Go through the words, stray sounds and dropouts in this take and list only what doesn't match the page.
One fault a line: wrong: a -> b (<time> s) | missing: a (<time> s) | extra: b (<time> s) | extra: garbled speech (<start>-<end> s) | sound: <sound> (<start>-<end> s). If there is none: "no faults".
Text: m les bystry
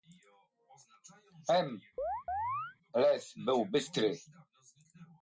sound: chirp (2.0-2.8 s)
extra: był (3.5 s)